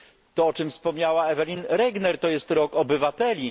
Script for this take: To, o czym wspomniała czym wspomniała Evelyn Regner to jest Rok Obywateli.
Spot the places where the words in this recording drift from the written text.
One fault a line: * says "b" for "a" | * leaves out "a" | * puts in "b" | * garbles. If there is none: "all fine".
* leaves out "czym wspomniała"